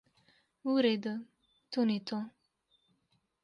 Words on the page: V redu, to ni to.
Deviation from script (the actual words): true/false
false